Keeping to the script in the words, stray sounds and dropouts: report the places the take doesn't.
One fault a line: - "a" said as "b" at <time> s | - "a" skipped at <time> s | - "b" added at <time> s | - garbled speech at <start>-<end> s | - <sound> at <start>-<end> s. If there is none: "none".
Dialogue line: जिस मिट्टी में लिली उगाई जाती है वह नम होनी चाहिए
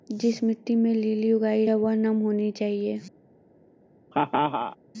- "जाती" skipped at 1.6 s
- laugh at 4.1-4.8 s